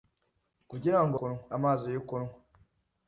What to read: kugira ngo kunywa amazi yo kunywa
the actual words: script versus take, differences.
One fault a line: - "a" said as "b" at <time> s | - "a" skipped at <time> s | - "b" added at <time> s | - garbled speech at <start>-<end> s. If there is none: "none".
none